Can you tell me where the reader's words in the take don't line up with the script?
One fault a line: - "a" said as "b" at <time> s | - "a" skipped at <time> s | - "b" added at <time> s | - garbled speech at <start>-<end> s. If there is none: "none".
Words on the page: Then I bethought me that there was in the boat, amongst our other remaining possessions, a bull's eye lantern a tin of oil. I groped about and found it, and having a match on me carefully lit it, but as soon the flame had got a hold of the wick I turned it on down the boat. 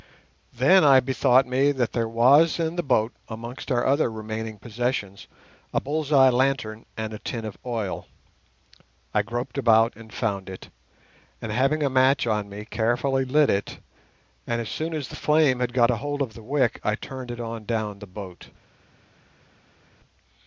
- "and" added at 7.0 s
- "but" said as "and" at 14.5 s
- "as" added at 14.9 s